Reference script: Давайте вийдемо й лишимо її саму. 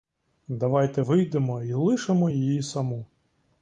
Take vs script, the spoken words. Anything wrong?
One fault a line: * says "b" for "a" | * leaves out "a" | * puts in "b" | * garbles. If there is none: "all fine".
all fine